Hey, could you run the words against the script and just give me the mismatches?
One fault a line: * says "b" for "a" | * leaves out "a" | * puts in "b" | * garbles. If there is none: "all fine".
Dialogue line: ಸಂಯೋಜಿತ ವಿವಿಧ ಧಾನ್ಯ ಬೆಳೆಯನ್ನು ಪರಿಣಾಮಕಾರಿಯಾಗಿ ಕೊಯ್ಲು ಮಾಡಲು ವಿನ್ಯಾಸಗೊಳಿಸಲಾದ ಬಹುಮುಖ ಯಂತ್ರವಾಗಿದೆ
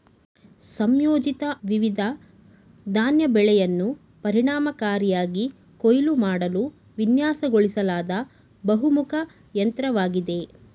all fine